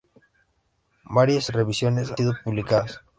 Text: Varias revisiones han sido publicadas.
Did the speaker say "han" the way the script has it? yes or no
no